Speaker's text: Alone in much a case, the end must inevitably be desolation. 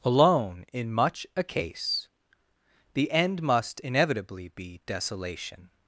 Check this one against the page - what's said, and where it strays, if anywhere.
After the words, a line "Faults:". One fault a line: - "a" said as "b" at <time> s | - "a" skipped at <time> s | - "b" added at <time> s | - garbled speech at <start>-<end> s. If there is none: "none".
Alone in much a case, the end must inevitably be desolation.
Faults:
none